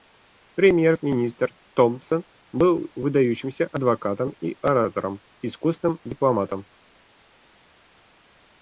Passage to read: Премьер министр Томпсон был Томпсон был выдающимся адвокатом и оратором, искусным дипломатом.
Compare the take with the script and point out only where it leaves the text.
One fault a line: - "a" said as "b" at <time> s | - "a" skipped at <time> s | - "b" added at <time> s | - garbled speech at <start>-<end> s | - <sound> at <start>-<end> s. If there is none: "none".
- "Томпсон был" skipped at 2.9 s